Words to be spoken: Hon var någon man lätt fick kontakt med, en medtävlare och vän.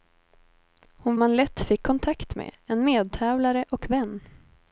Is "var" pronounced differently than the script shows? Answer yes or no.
yes